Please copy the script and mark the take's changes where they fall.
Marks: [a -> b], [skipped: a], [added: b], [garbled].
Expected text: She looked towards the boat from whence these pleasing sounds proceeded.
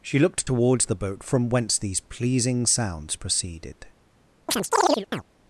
She looked towards the boat from whence these pleasing sounds proceeded.